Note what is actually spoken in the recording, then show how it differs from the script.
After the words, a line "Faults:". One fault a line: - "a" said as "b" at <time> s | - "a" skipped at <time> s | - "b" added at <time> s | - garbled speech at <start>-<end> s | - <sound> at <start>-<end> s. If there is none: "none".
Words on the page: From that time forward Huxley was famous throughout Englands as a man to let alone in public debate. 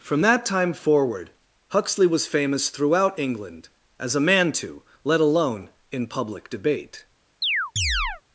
From that time forward Huxley was famous throughout England as a man to let alone in public debate.
Faults:
- "Englands" said as "England" at 3.2 s
- chirp at 7.4-8.2 s